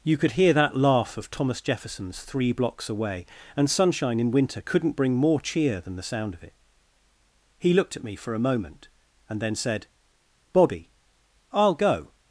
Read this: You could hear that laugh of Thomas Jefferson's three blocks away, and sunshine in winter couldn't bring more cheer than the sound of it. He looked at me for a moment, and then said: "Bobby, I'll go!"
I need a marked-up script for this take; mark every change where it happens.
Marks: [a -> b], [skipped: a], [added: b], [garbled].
You could hear that laugh of Thomas Jefferson's three blocks away, and sunshine in winter couldn't bring more cheer than the sound of it. He looked at me for a moment, and then said: "Bobby, I'll go!"